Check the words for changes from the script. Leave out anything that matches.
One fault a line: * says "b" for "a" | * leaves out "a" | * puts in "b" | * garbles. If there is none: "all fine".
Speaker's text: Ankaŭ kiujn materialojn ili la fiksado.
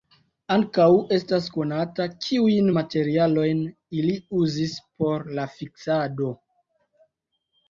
* puts in "estas konata"
* puts in "uzis por"